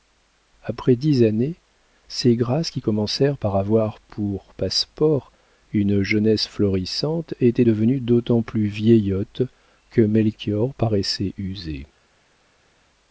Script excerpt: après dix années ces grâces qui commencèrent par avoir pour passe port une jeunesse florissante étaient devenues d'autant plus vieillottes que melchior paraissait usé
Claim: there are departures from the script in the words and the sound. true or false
false